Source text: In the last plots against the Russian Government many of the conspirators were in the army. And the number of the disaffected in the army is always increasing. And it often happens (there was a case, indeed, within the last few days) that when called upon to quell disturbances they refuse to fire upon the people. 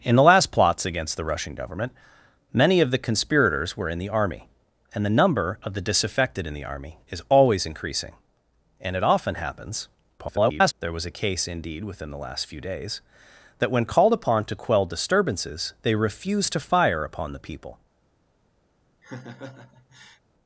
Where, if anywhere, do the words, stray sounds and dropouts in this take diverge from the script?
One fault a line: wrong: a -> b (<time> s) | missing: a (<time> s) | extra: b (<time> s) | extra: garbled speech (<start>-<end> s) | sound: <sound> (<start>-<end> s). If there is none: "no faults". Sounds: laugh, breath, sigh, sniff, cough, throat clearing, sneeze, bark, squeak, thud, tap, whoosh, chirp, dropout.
extra: garbled speech (10.2-10.7 s)
sound: laugh (19.0-20.2 s)